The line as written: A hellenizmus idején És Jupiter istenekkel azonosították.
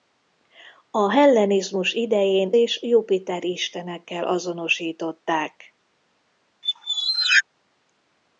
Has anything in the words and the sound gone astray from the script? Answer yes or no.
yes